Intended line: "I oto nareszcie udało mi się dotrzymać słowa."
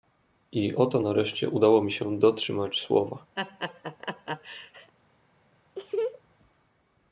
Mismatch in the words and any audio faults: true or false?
true